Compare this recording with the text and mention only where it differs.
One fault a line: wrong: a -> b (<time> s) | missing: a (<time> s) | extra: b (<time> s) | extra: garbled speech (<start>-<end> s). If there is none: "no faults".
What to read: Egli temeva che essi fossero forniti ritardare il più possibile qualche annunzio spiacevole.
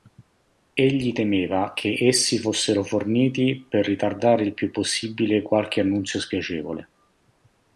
extra: per (3.7 s)